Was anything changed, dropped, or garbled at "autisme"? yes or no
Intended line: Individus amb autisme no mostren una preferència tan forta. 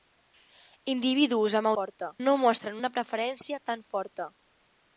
yes